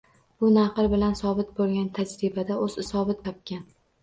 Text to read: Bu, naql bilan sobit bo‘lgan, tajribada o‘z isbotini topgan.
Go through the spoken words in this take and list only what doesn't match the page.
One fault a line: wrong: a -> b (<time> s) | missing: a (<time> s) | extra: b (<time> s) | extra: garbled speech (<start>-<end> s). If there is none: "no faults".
wrong: isbotini -> sobit (2.9 s)